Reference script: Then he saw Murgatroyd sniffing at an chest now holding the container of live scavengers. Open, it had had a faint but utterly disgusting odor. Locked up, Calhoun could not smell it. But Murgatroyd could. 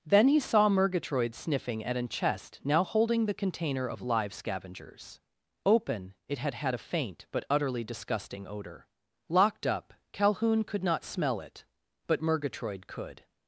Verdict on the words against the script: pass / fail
pass